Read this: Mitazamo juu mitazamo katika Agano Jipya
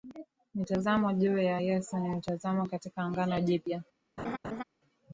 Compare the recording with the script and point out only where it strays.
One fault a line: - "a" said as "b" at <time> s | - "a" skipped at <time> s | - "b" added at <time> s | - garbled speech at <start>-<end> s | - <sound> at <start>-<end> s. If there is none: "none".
- "ya Yesu ni" added at 1.4 s
- laugh at 4.2-4.6 s